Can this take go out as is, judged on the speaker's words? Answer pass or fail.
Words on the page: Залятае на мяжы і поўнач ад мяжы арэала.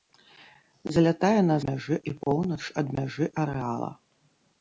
pass